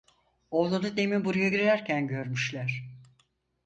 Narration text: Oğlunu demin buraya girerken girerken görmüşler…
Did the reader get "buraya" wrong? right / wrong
right